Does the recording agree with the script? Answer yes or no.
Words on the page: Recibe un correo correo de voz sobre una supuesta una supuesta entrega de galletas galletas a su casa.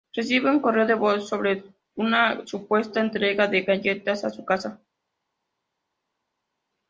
no